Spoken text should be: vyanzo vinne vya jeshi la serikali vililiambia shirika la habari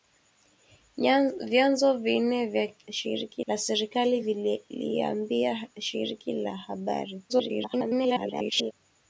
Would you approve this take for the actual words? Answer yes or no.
no